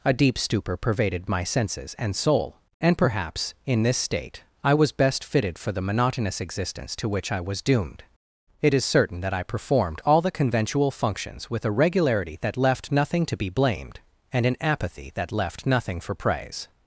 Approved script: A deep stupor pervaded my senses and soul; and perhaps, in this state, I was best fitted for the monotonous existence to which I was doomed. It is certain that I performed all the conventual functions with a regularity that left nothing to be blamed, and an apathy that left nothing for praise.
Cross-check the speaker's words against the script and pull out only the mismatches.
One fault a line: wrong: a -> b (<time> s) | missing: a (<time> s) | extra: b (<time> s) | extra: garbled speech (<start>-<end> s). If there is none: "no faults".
no faults